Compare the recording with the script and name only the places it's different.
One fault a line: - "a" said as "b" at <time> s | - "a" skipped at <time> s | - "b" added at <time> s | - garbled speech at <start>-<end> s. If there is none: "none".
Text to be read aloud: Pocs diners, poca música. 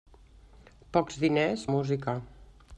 - "poca" skipped at 1.7 s